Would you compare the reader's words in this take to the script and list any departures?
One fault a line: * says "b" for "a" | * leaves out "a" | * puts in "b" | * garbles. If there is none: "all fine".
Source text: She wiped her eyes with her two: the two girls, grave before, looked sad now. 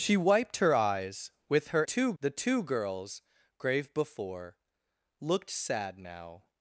all fine